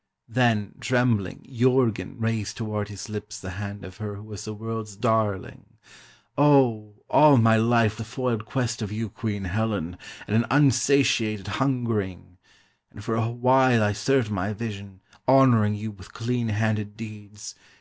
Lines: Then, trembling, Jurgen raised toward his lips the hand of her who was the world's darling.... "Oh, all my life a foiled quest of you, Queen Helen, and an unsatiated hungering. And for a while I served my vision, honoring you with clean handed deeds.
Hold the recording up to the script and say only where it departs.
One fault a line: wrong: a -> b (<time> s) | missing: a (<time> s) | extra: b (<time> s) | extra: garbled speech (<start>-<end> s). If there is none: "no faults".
no faults